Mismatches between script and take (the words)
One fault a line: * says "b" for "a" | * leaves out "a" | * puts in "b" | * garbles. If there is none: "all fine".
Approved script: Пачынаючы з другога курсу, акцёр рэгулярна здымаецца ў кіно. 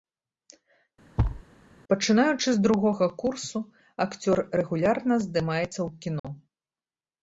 all fine